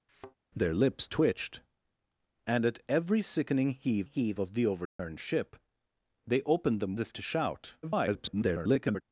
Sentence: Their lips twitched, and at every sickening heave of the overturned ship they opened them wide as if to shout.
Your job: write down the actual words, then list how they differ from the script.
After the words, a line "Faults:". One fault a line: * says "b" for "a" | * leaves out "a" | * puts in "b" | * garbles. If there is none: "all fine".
Their lips twitched, and at every sickening heave heave of the overturned ship they opened them if to shout. [garbled]
Faults:
* puts in "heave"
* leaves out "wide as"
* garbles